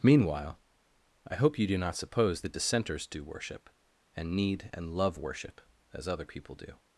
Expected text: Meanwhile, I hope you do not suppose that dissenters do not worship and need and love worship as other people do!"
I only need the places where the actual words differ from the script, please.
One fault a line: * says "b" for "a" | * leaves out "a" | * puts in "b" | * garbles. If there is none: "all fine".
* leaves out "not"